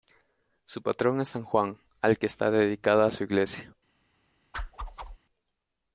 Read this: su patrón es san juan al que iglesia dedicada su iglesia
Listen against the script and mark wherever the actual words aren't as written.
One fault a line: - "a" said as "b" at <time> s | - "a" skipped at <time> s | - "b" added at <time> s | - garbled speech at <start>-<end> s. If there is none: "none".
- "iglesia" said as "está" at 2.2 s